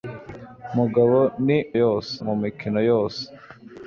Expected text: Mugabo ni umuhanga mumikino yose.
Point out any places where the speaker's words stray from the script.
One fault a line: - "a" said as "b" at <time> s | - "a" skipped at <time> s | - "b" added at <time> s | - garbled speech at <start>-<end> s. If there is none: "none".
- "umuhanga" said as "yose" at 1.8 s